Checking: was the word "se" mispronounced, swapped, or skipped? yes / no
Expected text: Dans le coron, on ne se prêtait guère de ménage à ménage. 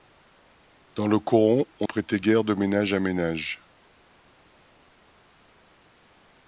yes